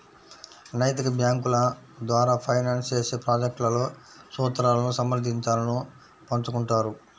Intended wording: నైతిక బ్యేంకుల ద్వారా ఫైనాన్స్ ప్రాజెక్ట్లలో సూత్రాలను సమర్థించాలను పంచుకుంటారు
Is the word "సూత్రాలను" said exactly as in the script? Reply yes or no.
yes